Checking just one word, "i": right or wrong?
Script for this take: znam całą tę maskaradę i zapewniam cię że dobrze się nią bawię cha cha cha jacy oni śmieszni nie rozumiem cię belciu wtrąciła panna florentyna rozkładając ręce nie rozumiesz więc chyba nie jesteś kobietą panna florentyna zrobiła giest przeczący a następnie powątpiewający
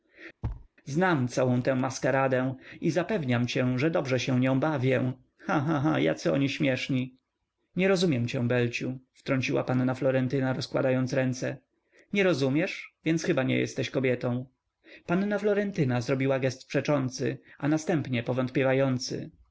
right